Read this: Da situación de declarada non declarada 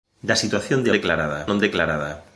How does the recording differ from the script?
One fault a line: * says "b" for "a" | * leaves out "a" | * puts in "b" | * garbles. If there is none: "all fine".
all fine